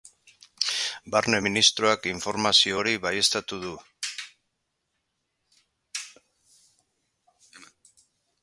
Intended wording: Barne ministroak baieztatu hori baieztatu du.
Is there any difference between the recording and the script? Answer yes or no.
yes